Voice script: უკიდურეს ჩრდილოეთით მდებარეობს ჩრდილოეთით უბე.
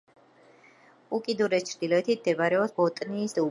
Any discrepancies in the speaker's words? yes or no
yes